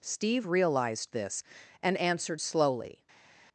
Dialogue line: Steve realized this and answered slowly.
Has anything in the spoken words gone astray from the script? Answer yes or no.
no